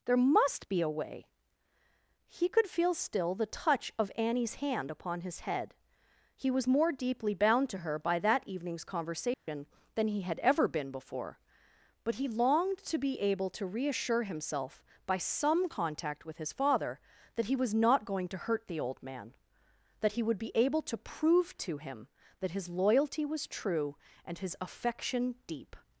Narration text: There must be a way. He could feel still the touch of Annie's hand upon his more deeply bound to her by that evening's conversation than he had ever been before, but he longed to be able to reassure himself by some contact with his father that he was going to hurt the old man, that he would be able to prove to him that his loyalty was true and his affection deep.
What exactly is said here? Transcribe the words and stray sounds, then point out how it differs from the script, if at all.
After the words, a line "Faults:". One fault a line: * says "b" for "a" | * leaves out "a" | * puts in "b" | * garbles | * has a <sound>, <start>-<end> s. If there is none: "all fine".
There must be a way. He could feel still the touch of Annie's hand upon his head; he was more deeply bound to her by that evening's conversation than he had ever been before, but he longed to be able to reassure himself by some contact with his father that he was not going to hurt the old man, that he would be able to prove to him that his loyalty was true and his affection deep.
Faults:
* puts in "head he was"
* has a dropout, 9.3-9.5 s
* puts in "not"